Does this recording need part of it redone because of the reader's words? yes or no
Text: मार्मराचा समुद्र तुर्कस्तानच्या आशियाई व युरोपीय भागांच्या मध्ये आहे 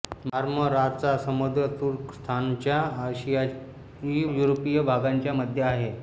yes